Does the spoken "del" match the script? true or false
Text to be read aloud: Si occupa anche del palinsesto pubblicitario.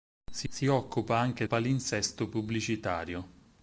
false